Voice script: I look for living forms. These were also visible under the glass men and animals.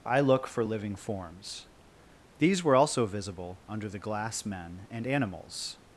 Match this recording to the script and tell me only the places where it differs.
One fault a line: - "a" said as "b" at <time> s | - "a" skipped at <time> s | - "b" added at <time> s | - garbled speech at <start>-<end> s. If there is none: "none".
none